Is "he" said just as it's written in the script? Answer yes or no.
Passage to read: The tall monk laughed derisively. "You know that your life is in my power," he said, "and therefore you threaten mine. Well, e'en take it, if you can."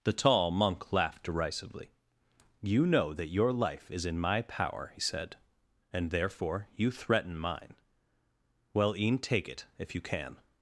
no